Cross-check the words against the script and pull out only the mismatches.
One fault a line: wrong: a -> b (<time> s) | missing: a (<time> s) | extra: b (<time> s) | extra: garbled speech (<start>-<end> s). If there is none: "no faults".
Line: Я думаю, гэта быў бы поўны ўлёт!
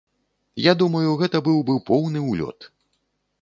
no faults